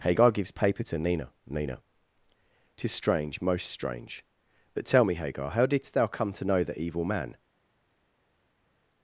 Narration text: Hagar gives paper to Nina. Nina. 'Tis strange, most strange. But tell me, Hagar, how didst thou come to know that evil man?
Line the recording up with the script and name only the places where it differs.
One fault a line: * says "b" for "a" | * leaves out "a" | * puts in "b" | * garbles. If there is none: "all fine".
* says "the" for "that"